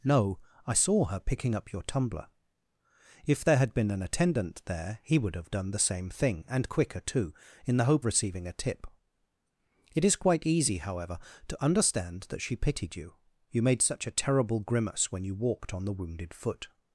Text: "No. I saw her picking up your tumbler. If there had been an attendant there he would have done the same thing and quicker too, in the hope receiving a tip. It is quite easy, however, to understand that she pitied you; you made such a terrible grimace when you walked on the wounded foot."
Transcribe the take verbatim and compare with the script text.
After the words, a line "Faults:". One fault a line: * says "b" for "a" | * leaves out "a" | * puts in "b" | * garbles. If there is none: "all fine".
"No. I saw her picking up your tumbler. If there had been an attendant there he would have done the same thing and quicker too, in the hope receiving a tip. It is quite easy, however, to understand that she pitied you; you made such a terrible grimace when you walked on the wounded foot."
Faults:
all fine